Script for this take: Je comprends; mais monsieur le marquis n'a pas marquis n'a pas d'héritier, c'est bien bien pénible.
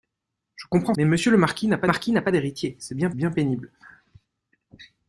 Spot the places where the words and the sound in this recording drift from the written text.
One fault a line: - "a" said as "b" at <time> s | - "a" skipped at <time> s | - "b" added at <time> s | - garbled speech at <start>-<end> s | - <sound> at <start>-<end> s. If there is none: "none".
none